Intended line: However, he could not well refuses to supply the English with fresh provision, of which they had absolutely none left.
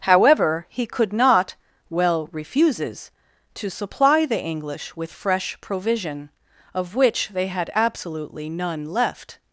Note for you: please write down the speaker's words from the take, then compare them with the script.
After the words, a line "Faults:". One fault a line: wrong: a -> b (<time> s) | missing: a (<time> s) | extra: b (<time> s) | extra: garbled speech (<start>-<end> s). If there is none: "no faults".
However, he could not well refuses to supply the English with fresh provision, of which they had absolutely none left.
Faults:
no faults